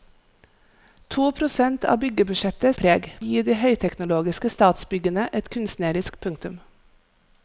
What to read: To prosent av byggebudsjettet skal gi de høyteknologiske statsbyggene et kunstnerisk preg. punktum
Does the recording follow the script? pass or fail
fail